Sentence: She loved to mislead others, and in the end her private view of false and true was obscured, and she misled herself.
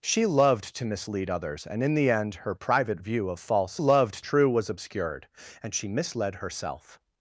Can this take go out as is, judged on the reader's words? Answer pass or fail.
fail